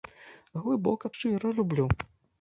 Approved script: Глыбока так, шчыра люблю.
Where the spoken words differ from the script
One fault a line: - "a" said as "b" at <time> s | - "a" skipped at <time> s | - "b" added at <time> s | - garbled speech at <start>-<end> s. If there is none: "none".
- "так" skipped at 1.1 s